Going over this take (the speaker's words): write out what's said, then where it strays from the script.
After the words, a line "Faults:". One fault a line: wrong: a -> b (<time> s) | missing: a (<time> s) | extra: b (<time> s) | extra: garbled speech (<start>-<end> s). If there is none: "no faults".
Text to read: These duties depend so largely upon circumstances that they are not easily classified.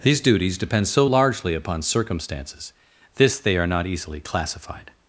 These duties depend so largely upon circumstances this they are not easily classified.
Faults:
wrong: that -> this (3.2 s)